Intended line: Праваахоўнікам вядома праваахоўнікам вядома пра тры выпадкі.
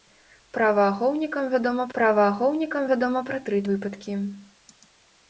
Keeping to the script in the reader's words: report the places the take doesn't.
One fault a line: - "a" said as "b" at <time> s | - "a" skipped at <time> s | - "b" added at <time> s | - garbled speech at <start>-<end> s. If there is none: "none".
none